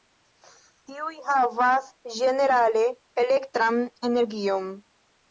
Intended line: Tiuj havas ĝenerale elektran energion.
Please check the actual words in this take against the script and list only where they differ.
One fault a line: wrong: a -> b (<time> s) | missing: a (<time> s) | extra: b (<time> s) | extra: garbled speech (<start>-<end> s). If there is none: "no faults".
no faults